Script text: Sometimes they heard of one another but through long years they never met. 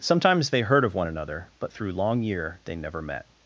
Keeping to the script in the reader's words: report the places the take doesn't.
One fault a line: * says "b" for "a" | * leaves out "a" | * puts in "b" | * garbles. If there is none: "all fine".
* says "year" for "years"